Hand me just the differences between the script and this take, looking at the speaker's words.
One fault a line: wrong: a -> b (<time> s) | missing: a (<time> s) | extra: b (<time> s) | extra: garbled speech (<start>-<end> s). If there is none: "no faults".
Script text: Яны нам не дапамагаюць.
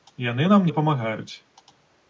missing: не (0.7 s)